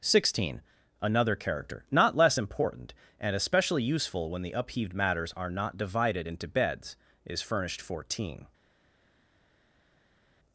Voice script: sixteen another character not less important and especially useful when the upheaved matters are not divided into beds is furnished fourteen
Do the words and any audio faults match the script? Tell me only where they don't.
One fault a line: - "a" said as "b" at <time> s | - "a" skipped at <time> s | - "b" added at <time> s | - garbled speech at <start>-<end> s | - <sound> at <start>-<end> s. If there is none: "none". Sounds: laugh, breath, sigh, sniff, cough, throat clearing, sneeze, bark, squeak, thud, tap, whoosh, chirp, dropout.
none